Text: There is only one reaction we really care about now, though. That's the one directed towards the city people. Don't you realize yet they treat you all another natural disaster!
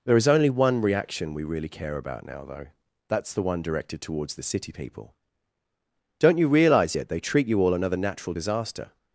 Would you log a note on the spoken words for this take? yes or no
no